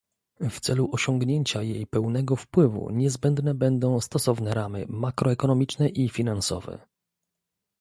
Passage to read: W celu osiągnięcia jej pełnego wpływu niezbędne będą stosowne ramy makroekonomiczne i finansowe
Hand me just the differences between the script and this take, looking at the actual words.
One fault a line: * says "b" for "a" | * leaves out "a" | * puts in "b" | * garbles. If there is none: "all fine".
all fine